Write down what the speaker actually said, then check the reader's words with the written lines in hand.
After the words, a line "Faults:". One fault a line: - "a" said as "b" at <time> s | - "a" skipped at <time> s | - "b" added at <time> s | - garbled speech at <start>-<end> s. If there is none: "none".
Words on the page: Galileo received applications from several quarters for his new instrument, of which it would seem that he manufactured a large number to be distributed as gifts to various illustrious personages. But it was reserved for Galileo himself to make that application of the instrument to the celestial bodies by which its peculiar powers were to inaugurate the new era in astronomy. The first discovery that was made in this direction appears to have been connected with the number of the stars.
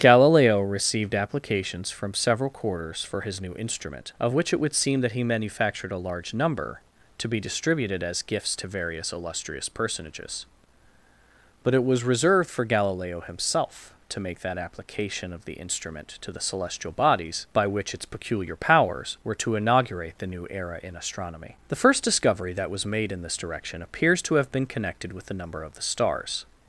Galileo received applications from several quarters for his new instrument, of which it would seem that he manufactured a large number to be distributed as gifts to various illustrious personages. But it was reserved for Galileo himself to make that application of the instrument to the celestial bodies by which its peculiar powers were to inaugurate the new era in astronomy. The first discovery that was made in this direction appears to have been connected with the number of the stars.
Faults:
none